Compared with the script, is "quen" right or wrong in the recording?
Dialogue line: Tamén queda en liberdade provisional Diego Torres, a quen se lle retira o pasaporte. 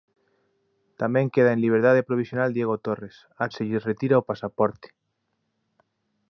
wrong